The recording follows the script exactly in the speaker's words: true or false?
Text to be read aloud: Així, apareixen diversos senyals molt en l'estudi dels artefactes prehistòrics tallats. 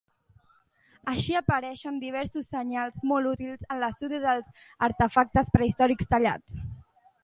false